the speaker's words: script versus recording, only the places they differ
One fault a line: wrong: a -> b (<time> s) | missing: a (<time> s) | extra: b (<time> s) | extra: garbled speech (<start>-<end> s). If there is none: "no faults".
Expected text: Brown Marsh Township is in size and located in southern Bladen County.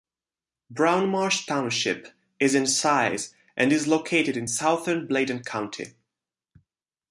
extra: is (3.7 s)